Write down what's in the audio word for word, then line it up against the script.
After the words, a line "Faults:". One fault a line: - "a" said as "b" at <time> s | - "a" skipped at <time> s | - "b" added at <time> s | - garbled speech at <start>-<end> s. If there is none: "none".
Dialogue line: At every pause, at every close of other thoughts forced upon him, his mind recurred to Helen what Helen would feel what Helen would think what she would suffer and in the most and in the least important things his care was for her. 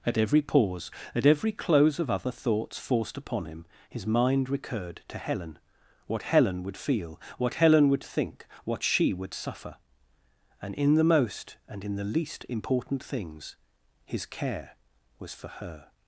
At every pause, at every close of other thoughts forced upon him, his mind recurred to Helen what Helen would feel what Helen would think what she would suffer and in the most and in the least important things his care was for her.
Faults:
none